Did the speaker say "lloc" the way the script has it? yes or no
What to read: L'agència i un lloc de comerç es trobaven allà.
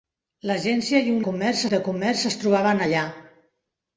no